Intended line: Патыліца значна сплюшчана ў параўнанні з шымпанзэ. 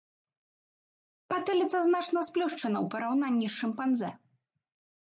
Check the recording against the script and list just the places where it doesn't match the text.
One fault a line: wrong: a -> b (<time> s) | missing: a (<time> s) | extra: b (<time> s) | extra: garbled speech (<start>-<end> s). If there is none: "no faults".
no faults